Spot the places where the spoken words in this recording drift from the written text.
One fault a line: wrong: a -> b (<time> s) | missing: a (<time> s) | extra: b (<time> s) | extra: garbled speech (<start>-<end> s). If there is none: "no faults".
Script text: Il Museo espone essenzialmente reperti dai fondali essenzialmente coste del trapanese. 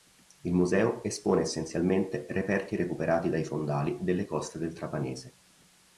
extra: recuperati (2.8 s)
wrong: essenzialmente -> delle (4.0 s)